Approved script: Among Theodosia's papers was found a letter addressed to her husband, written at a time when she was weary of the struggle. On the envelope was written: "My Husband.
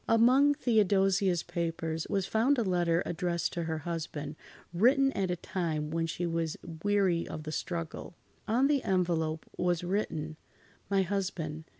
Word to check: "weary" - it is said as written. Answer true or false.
true